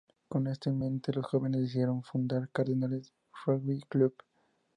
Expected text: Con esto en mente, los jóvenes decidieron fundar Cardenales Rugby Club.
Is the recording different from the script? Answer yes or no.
no